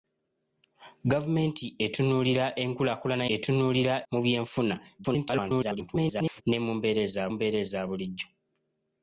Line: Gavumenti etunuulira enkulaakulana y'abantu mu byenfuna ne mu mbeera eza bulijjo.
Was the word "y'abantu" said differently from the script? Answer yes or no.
yes